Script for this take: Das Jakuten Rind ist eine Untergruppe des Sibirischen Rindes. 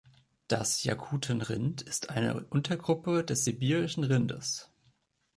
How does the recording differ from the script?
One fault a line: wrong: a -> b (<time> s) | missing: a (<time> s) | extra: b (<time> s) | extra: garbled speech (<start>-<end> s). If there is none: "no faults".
no faults